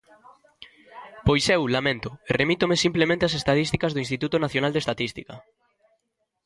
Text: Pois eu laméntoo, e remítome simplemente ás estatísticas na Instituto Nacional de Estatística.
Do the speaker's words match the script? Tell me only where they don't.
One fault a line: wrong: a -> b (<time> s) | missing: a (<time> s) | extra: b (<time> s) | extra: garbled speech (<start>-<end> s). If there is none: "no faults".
wrong: na -> do (3.9 s)